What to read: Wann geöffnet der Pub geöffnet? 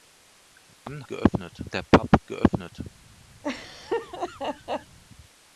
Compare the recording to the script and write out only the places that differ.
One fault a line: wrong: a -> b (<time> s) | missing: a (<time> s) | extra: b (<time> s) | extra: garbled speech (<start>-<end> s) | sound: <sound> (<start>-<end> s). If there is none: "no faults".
sound: dropout (0.7-0.9 s)
sound: laugh (3.4-5.0 s)